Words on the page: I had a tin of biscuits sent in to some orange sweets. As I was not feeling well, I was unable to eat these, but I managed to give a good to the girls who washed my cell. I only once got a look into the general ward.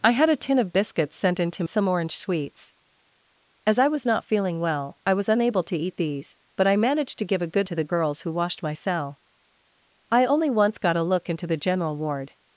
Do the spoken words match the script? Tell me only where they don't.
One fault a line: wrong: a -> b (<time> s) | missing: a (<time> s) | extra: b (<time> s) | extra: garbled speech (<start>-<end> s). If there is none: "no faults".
no faults